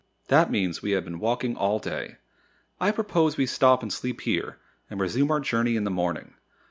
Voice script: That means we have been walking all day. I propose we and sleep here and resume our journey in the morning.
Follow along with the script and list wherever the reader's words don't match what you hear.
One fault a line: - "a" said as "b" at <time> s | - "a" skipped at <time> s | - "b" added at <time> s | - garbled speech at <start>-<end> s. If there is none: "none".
- "stop" added at 3.5 s